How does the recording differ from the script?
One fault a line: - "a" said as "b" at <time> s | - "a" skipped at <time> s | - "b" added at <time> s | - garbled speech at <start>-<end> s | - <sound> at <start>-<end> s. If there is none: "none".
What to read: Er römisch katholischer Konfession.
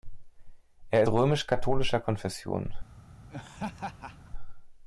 - laugh at 3.3-4.3 s